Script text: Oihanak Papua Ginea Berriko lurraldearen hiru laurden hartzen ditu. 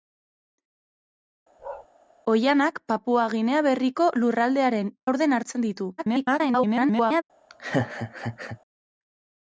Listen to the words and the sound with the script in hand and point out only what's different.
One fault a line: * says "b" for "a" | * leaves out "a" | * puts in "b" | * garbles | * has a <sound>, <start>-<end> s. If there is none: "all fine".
* has a bark, 1.6-1.9 s
* leaves out "hiru"
* garbles
* has a laugh, 7.5-8.6 s